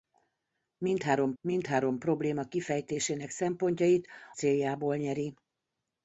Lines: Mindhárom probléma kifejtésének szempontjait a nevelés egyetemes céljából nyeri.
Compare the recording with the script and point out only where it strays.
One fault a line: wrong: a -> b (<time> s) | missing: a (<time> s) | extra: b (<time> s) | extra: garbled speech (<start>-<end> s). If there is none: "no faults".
extra: mindhárom (1.4 s)
missing: a nevelés egyetemes (4.1 s)